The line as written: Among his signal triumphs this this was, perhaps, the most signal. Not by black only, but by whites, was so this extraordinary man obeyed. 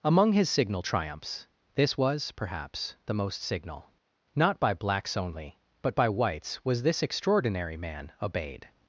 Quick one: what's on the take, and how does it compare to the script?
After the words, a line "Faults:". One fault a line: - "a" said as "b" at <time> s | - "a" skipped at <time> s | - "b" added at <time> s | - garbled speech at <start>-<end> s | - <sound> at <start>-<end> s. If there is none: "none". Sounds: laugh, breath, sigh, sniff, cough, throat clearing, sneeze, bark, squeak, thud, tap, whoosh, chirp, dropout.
Among his signal triumphs this was, perhaps, the most signal. Not by blacks only, but by whites, was this extraordinary man obeyed.
Faults:
- "this" skipped at 2.0 s
- "black" said as "blacks" at 4.7 s
- "so" skipped at 6.8 s